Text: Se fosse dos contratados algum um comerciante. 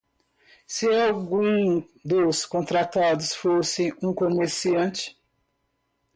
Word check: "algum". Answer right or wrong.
wrong